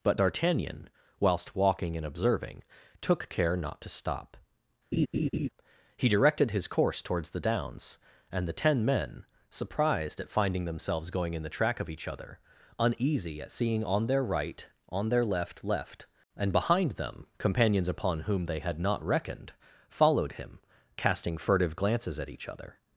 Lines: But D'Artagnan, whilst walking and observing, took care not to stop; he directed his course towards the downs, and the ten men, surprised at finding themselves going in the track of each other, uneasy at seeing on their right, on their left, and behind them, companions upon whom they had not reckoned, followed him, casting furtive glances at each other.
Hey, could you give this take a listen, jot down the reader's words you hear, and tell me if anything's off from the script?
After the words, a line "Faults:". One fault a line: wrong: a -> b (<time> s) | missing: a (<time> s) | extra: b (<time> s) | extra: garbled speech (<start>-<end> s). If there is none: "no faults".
But D'Artagnan, whilst walking and observing, took care not to stop; he directed his course towards the downs, and the ten men, surprised at finding themselves going in the track of each other, uneasy at seeing on their right, on their left left, and behind them, companions upon whom they had not reckoned, followed him, casting furtive glances at each other.
Faults:
extra: left (15.6 s)